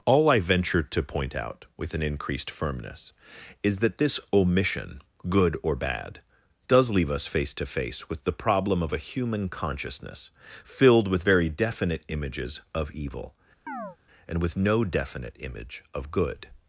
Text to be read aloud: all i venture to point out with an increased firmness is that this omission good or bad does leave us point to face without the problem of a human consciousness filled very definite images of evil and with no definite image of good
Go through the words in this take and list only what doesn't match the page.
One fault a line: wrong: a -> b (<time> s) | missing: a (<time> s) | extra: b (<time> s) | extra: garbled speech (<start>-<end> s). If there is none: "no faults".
wrong: point -> face (7.3 s)
wrong: without -> with (8.1 s)
extra: with (11.1 s)